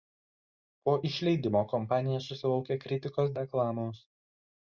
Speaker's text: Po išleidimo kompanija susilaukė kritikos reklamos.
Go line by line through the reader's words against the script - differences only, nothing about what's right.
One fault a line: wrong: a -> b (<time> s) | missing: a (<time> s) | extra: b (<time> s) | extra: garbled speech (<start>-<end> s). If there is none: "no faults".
no faults